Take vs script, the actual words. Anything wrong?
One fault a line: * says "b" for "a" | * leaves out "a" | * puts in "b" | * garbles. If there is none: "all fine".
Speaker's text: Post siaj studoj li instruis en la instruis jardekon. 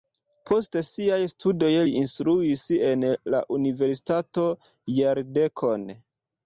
* says "universitato" for "instruis"